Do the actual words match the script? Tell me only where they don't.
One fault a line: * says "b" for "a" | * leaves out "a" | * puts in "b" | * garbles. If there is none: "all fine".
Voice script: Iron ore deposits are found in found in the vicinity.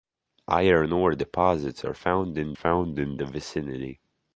all fine